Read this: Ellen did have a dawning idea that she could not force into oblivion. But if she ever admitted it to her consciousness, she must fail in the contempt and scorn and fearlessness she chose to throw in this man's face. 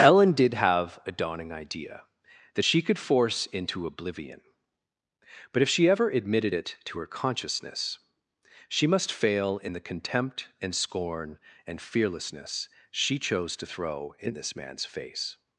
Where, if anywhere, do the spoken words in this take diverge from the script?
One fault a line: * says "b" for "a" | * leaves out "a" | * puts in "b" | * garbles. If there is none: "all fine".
* leaves out "not"